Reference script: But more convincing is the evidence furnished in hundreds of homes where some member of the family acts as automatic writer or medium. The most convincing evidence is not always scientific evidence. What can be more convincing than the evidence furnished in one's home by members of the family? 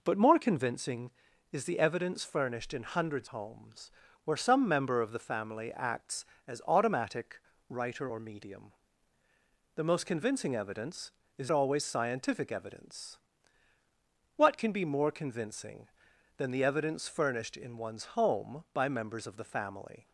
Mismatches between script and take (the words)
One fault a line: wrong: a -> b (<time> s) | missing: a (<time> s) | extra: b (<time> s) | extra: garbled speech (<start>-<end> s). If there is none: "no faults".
missing: of (3.3 s)
missing: not (11.5 s)